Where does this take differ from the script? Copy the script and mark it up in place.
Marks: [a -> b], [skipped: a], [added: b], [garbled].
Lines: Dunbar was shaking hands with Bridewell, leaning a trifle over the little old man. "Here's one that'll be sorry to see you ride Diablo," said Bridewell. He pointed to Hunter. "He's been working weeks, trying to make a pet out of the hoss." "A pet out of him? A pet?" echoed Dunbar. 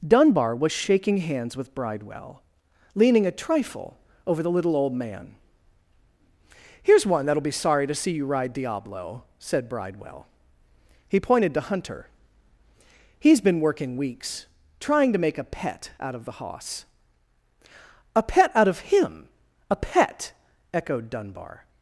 Dunbar was shaking hands with Bridewell, leaning a trifle over the little old man. "Here's one that'll be sorry to see you ride Diablo," said Bridewell. He pointed to Hunter. "He's been working weeks, trying to make a pet out of the hoss." "A pet out of him? A pet?" echoed Dunbar.